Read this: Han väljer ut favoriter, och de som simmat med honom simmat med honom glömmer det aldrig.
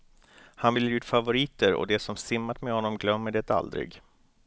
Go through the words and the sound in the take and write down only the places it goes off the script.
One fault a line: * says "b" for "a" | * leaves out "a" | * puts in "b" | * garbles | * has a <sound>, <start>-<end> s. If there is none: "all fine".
* leaves out "simmat med honom"